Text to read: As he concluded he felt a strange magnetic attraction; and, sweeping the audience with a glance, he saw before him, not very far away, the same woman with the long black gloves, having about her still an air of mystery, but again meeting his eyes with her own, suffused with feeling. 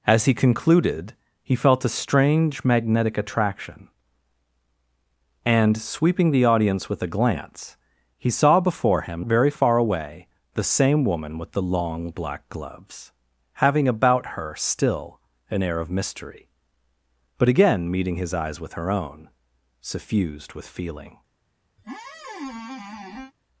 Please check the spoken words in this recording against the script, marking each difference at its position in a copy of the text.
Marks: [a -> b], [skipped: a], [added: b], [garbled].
As he concluded he felt a strange magnetic attraction; and, sweeping the audience with a glance, he saw before him, [skipped: not] very far away, the same woman with the long black gloves, having about her still an air of mystery, but again meeting his eyes with her own, suffused with feeling.